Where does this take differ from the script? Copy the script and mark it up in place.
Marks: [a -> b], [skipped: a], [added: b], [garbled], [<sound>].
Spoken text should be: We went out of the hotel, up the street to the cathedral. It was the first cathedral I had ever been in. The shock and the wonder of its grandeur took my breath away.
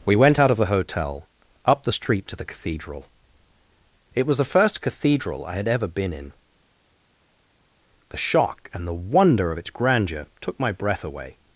We went out of the hotel, up the street to the cathedral. It was the first cathedral I had ever been in. The shock and the wonder of its grandeur took my breath away.